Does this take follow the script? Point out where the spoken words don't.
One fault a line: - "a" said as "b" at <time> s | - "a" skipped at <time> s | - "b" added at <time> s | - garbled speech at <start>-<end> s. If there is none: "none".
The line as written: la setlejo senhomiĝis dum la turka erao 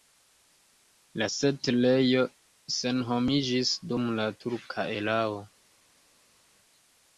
none